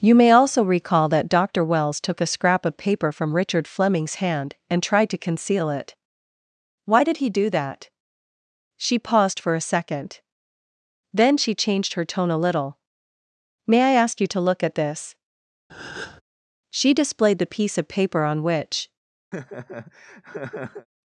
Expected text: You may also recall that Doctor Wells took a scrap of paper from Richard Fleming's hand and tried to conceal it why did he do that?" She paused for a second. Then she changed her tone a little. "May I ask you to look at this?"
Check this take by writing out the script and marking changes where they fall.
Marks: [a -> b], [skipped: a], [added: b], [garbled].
You may also recall that Doctor Wells took a scrap of paper from Richard Fleming's hand and tried to conceal it why did he do that?" She paused for a second. Then she changed her tone a little. "May I ask you to look at this?" [added: She displayed the piece of paper on which]